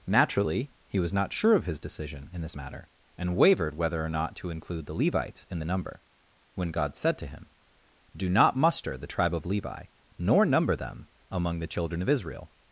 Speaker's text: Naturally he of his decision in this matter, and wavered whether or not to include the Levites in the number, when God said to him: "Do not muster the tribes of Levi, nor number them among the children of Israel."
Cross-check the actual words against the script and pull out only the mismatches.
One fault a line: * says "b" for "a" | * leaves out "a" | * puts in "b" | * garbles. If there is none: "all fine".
* puts in "was not sure"
* says "tribe" for "tribes"